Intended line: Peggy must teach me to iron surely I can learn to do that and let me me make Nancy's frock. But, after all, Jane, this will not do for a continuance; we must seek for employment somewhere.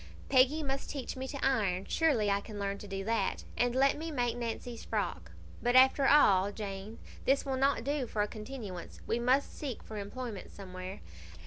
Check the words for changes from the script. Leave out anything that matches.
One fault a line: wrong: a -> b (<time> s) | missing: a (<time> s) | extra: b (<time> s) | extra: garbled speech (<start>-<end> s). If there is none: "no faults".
missing: me (4.1 s)